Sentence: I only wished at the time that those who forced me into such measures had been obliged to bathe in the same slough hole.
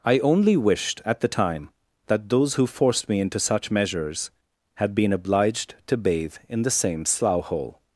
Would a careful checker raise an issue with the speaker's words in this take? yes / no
no